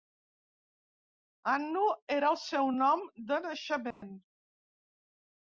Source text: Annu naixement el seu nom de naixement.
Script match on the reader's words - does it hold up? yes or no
no